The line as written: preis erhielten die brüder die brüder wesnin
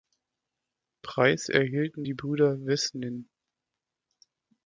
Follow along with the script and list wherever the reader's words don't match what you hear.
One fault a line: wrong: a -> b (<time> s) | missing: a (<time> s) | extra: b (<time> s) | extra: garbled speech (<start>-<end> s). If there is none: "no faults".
missing: die brüder (2.7 s)